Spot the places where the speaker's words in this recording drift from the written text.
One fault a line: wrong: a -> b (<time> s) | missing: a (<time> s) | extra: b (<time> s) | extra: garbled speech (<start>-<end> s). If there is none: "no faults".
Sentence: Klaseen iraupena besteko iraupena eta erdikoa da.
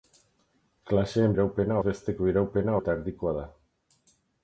no faults